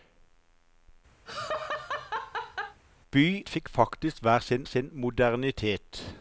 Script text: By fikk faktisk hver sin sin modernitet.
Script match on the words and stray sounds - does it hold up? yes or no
no